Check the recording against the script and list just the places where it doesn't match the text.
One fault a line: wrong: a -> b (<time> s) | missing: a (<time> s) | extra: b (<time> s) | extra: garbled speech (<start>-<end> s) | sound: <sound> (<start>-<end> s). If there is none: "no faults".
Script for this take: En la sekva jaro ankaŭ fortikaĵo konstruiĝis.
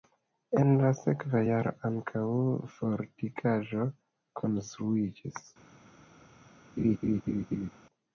sound: laugh (6.8-7.7 s)